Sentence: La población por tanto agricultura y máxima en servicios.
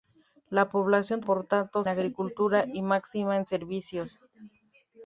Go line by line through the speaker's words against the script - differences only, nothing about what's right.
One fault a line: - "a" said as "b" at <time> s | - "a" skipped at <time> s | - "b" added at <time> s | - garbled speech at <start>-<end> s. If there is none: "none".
none